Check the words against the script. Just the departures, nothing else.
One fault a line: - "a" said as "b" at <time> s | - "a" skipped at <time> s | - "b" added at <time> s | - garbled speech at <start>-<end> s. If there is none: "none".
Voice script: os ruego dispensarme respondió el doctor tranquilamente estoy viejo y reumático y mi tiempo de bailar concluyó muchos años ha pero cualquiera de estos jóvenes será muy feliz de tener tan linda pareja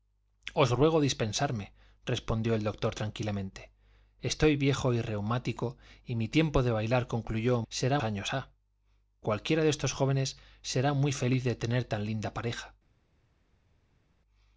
- "muchos" said as "será" at 7.7 s
- "pero" skipped at 8.5 s